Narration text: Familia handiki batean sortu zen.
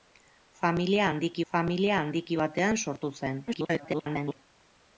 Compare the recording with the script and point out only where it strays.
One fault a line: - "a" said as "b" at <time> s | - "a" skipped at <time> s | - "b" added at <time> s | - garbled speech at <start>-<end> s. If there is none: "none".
- "familia handiki" added at 1.5 s
- garbled speech at 3.5-4.4 s